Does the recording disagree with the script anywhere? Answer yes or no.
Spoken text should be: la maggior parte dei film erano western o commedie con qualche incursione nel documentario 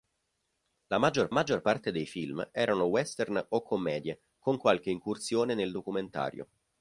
yes